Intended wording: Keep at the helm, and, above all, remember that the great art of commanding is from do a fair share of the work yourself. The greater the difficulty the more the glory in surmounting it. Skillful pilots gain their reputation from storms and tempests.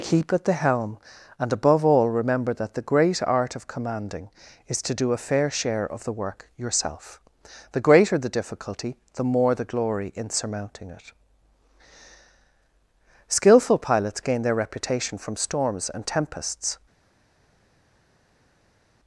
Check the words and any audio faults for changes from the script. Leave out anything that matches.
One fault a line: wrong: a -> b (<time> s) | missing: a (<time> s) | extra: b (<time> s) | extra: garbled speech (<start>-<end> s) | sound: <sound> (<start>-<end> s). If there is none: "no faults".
wrong: from -> to (4.8 s)